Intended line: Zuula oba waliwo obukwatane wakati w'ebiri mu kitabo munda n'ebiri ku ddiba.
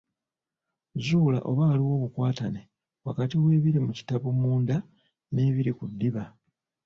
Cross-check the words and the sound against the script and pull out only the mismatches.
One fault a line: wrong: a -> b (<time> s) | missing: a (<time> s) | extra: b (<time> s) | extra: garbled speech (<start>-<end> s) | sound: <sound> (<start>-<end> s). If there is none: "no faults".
no faults